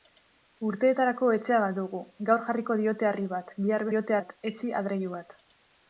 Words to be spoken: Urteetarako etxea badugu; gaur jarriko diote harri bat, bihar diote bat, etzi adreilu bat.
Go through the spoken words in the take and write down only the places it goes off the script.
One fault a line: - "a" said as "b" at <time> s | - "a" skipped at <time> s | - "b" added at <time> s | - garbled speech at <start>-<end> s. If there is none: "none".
none